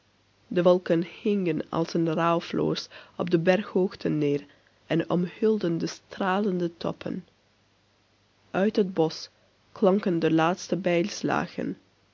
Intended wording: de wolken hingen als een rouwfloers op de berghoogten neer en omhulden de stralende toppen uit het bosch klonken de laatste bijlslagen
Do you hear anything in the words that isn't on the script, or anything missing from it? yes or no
no